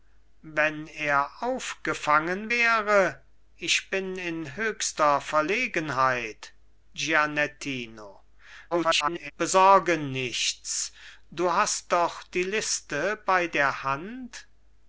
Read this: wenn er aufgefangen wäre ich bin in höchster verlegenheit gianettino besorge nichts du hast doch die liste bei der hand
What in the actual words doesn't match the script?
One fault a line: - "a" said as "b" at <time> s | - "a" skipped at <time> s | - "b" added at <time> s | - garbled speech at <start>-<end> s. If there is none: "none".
- garbled speech at 8.7-9.3 s